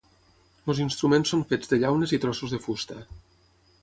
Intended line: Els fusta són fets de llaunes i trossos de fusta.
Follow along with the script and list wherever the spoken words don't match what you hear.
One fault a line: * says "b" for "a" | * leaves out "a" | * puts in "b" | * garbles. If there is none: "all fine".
* says "instruments" for "fusta"